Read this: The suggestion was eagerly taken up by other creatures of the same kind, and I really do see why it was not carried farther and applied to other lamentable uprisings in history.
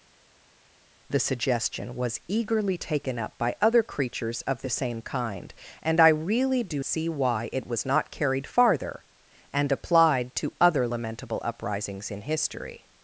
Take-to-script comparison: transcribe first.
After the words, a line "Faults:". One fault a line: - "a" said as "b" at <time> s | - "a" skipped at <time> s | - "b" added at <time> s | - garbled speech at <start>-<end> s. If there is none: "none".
The suggestion was eagerly taken up by other creatures of the same kind, and I really do see why it was not carried farther and applied to other lamentable uprisings in history.
Faults:
none